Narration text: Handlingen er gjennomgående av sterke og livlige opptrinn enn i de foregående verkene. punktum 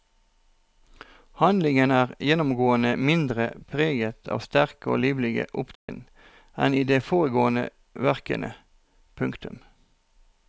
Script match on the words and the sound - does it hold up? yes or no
no